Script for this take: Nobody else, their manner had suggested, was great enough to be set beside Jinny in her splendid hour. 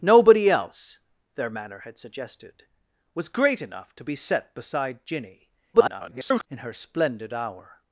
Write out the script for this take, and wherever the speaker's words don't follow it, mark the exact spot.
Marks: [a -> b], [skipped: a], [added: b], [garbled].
Nobody else, their manner had suggested, was great enough to be set beside Jinny [garbled] in her splendid hour.